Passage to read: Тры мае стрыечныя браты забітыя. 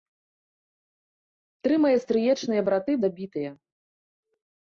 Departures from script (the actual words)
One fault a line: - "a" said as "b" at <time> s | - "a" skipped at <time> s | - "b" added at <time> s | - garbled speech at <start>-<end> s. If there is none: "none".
none